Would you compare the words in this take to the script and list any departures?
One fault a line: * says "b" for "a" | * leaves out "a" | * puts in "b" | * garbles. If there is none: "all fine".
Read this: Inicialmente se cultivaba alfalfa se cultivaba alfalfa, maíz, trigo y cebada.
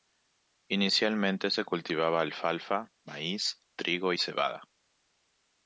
* leaves out "se cultivaba alfalfa"